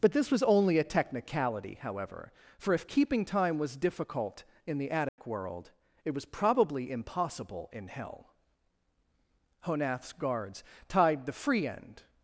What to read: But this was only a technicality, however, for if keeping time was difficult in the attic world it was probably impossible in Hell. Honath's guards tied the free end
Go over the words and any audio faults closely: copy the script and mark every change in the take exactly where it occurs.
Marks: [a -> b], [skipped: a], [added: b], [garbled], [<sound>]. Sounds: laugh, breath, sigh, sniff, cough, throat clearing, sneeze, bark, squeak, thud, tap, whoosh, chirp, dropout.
But this was only a technicality, however, for if keeping time was difficult in the attic [dropout] world it was probably impossible in Hell. Honath's guards tied the free end